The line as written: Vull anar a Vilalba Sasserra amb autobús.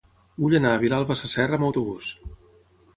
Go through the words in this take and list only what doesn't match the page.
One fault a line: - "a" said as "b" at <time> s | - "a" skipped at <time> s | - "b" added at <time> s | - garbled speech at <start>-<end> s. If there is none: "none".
none